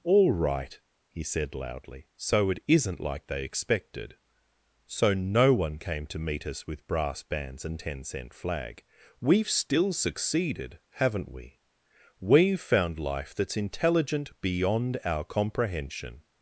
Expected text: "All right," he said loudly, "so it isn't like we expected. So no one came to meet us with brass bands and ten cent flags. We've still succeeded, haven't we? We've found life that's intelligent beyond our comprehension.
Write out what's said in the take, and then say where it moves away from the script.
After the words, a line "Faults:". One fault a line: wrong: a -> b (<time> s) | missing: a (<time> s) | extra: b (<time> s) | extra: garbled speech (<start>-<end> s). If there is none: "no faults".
"All right," he said loudly, "so it isn't like they expected. So no one came to meet us with brass bands and ten cent flag. We've still succeeded, haven't we? We've found life that's intelligent beyond our comprehension.
Faults:
wrong: we -> they (3.3 s)
wrong: flags -> flag (8.3 s)